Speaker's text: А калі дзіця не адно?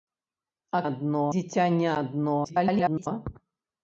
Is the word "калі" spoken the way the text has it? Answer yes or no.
no